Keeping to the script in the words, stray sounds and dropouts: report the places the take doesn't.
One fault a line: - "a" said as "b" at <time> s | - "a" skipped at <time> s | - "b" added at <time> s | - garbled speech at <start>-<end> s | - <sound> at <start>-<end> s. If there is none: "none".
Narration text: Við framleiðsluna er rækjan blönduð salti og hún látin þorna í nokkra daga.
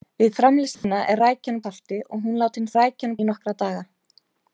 - dropout at 0.7-0.8 s
- "blönduð" skipped at 1.6 s
- "þorna" said as "rækjan" at 2.8 s